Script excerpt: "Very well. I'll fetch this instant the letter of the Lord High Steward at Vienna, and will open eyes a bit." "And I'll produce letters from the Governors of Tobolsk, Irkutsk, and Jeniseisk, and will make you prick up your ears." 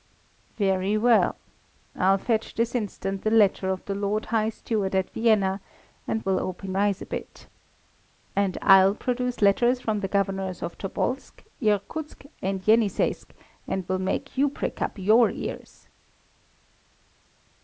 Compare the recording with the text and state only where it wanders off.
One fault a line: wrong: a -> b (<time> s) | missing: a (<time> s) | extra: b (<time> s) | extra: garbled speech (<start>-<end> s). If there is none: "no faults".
no faults